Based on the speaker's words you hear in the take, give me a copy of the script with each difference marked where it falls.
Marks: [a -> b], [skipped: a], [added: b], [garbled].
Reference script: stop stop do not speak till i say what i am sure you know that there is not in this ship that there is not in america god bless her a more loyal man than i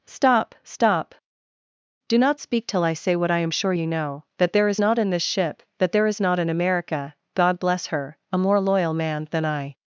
stop stop do not speak till i say what i am sure you know that there is not in this ship that there is not in america god bless her a more loyal man than i